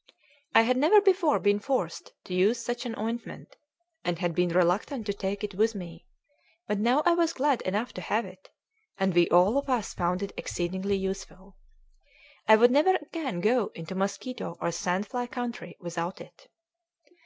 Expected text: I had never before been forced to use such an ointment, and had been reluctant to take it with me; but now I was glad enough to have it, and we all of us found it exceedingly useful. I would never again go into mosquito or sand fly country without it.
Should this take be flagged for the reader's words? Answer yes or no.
no